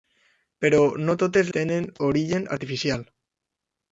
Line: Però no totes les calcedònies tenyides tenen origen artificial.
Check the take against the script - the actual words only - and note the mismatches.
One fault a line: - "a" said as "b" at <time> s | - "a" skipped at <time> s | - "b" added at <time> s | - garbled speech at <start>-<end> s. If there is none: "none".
- "les calcedònies tenyides" skipped at 1.5 s